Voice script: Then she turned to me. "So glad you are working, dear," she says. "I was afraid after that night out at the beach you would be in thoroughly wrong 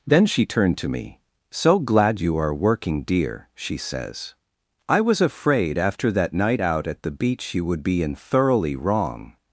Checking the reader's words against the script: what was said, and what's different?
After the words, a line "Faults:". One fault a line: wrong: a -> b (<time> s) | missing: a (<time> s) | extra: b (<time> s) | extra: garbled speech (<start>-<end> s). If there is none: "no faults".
Then she turned to me. "So glad you are working, dear," she says. "I was afraid after that night out at the beach you would be in thoroughly wrong
Faults:
no faults